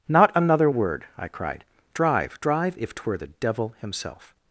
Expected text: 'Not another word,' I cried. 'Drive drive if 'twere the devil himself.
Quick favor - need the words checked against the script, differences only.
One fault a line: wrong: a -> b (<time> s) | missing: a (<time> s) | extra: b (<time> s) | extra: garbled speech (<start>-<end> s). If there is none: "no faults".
no faults